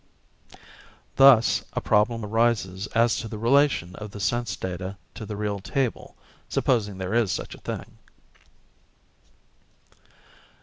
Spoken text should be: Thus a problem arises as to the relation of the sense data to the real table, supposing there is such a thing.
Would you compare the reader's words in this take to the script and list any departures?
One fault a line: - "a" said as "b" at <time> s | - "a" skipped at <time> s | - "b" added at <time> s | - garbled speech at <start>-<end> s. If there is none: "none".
none